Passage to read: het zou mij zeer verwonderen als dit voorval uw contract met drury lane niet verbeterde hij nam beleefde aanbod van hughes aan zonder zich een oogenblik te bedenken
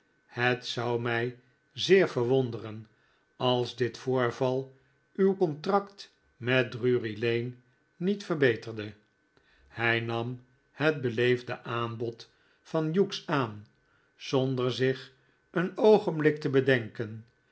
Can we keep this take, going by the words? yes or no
no